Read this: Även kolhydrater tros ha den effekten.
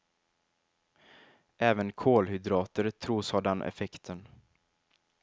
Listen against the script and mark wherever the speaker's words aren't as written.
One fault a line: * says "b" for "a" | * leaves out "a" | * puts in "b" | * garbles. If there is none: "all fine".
all fine